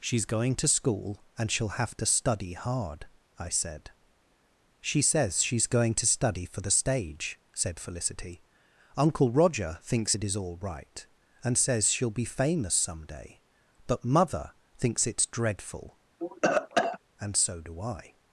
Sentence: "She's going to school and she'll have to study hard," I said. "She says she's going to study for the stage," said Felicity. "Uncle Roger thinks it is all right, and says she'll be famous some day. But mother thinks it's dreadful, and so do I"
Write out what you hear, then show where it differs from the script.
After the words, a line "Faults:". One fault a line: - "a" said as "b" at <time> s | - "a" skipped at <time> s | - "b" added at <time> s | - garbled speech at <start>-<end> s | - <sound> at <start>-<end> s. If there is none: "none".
"She's going to school and she'll have to study hard," I said. "She says she's going to study for the stage," said Felicity. "Uncle Roger thinks it is all right, and says she'll be famous some day. But mother thinks it's dreadful, and so do I"
Faults:
- cough at 16.2-17.0 s